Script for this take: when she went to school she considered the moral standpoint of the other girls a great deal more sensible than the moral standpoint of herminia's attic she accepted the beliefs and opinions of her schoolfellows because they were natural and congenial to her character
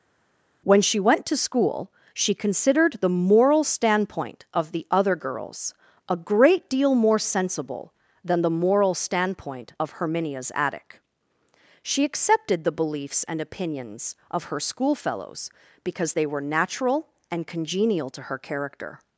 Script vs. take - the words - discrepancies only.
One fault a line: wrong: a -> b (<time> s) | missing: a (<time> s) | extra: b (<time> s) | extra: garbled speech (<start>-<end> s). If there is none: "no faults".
no faults